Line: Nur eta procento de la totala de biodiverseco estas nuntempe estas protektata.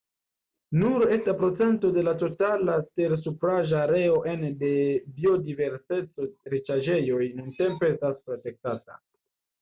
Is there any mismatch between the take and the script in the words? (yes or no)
yes